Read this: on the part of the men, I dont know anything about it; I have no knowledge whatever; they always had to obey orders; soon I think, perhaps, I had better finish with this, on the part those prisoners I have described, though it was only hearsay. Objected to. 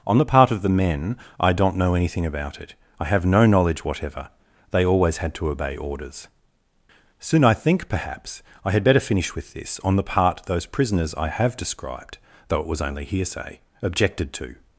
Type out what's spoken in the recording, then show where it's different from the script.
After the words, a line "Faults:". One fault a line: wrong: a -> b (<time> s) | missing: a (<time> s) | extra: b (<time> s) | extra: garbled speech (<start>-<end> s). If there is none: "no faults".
on the part of the men, I dont know anything about it; I have no knowledge whatever; they always had to obey orders; soon I think, perhaps, I had better finish with this, on the part those prisoners I have described, though it was only hearsay. Objected to.
Faults:
no faults